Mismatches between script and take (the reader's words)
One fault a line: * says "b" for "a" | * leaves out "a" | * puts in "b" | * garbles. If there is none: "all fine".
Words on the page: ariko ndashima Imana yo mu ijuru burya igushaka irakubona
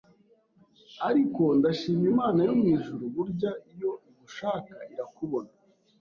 * puts in "iyo"